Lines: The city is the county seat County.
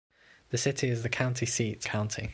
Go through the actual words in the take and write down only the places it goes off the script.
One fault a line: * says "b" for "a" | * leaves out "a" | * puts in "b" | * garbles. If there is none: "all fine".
all fine